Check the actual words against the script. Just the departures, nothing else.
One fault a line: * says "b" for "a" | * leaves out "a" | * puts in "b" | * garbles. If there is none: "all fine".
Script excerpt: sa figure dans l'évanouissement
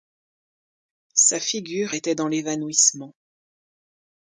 * puts in "était"